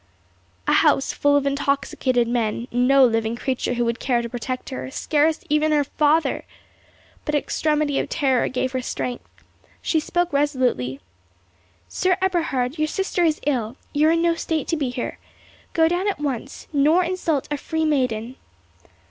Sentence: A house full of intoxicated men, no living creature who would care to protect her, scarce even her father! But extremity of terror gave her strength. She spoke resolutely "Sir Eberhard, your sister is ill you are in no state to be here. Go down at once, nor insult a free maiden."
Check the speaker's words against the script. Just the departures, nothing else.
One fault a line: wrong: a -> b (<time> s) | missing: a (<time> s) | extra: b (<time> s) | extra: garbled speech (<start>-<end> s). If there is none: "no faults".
no faults